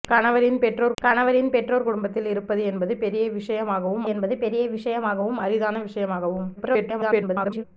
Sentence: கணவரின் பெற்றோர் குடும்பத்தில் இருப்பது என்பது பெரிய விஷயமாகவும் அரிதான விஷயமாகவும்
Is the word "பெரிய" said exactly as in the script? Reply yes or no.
yes